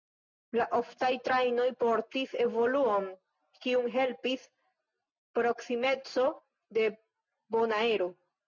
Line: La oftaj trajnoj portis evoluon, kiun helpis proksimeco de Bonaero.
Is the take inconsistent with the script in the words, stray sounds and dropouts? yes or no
no